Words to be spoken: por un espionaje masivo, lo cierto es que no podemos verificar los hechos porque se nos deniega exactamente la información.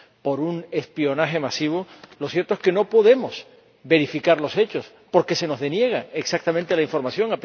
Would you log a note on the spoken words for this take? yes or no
no